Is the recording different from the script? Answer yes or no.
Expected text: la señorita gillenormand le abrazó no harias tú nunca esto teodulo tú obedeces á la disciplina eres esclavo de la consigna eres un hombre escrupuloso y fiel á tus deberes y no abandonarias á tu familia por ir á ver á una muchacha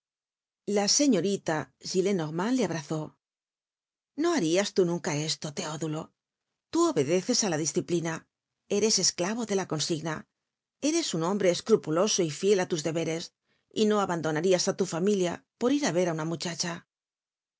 no